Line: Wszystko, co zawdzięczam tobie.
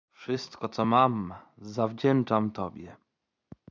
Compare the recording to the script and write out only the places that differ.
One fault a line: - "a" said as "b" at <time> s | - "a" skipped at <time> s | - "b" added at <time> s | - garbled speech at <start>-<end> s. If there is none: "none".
- "mam" added at 0.8 s